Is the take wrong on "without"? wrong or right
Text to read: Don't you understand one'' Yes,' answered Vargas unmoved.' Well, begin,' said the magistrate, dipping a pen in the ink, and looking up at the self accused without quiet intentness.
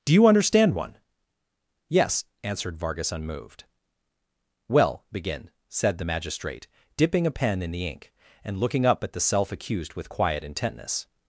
wrong